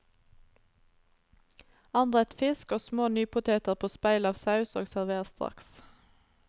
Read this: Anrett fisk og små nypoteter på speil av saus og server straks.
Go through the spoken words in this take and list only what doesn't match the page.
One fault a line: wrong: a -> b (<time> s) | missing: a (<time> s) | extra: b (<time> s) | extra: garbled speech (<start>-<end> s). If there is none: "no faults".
no faults